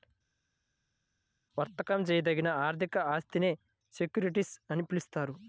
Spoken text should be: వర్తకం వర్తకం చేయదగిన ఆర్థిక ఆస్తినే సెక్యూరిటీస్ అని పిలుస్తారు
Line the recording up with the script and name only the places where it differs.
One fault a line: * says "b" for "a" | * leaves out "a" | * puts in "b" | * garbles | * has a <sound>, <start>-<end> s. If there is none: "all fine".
* leaves out "వర్తకం"